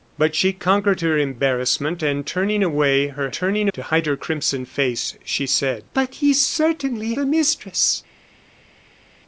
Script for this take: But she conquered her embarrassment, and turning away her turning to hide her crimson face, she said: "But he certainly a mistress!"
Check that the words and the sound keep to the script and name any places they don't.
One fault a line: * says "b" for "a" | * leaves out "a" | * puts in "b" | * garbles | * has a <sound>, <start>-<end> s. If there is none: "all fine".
all fine